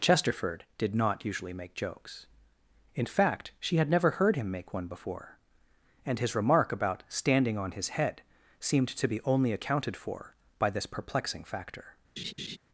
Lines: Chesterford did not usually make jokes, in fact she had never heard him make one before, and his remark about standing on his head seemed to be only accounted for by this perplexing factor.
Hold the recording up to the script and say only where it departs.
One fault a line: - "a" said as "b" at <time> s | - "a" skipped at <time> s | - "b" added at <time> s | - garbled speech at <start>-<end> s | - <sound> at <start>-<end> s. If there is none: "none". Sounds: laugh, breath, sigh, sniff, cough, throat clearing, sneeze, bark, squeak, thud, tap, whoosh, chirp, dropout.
- laugh at 12.2-12.6 s